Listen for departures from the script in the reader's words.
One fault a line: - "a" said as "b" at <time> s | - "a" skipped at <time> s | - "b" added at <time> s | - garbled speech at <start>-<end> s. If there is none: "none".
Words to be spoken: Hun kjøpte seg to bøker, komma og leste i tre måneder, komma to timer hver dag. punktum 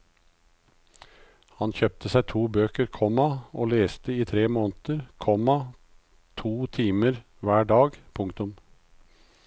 - "Hun" said as "Han" at 1.6 s